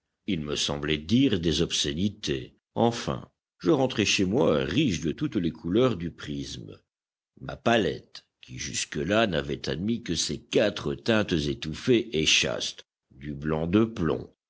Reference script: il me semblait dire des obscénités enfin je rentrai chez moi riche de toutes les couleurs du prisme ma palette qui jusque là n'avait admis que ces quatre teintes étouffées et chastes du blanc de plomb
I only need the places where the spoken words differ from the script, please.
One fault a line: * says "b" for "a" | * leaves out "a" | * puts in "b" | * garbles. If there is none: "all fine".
all fine